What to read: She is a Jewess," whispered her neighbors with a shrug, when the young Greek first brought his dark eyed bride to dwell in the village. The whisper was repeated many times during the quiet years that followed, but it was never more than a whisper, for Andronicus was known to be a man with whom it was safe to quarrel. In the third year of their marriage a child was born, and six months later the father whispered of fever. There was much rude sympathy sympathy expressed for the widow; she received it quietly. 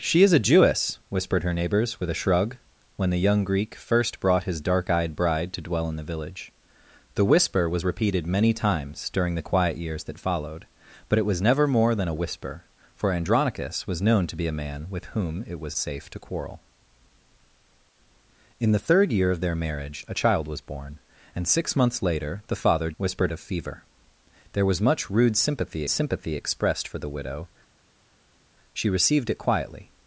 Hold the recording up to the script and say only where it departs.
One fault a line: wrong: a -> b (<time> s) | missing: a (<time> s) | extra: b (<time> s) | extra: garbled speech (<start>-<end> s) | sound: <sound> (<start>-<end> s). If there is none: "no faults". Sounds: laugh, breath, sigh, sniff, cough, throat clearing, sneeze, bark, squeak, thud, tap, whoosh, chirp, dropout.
no faults